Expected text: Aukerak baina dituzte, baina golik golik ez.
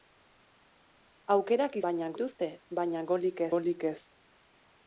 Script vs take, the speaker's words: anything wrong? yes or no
no